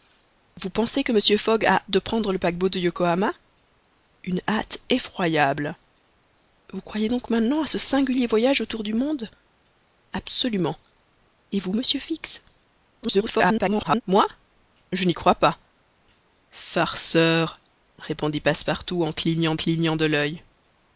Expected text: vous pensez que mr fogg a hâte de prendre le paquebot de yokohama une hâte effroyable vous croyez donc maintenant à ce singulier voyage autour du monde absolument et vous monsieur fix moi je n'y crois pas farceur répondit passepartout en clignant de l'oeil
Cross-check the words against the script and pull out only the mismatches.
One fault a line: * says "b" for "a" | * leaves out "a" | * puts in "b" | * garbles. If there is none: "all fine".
* leaves out "hâte"
* garbles
* puts in "clignant"